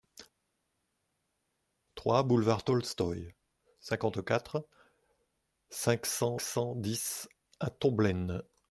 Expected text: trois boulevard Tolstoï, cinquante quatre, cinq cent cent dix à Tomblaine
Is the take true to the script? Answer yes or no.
yes